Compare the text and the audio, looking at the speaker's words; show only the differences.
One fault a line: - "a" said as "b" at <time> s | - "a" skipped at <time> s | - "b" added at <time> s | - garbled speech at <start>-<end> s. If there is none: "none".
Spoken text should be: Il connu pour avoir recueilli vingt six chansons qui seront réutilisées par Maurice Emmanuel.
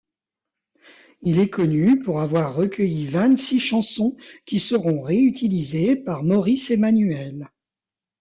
- "est" added at 1.4 s